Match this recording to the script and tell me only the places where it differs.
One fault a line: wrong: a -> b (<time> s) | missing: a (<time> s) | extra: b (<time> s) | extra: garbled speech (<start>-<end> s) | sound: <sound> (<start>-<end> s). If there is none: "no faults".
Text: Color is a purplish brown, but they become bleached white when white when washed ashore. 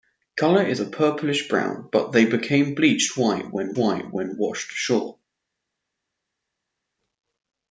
no faults